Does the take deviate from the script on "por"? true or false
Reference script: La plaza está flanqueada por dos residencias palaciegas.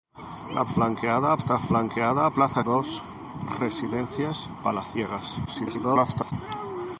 true